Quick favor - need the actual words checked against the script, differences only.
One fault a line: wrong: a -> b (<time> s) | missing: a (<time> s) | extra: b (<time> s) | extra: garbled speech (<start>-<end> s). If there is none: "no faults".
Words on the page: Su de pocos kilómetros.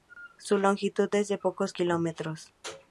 extra: longitud es (0.6 s)